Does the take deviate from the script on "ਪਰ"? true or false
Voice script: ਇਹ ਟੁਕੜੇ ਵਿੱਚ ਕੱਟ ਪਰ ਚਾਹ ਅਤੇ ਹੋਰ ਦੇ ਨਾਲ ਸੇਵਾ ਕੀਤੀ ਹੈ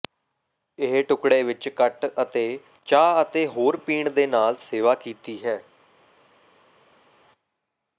true